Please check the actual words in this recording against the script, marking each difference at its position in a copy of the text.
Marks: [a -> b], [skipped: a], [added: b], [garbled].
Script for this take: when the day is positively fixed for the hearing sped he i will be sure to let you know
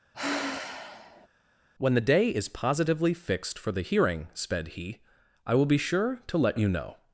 when the day is positively fixed for the hearing sped he i will be sure to let you know